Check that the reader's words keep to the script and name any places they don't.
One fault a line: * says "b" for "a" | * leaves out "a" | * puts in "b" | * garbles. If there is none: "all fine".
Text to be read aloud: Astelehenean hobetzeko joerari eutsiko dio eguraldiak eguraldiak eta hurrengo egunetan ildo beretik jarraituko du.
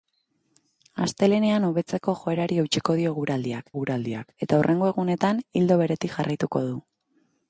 all fine